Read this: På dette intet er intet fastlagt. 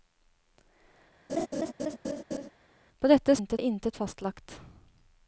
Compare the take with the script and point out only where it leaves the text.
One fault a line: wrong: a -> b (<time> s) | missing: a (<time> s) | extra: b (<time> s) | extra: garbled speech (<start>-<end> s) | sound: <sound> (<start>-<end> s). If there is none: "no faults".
sound: laugh (1.3-2.5 s)